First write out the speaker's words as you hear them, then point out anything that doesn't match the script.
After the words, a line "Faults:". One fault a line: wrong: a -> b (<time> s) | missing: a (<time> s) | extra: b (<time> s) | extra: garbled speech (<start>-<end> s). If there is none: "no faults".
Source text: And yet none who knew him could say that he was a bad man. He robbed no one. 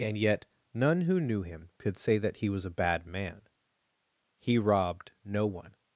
And yet none who knew him could say that he was a bad man. He robbed no one.
Faults:
no faults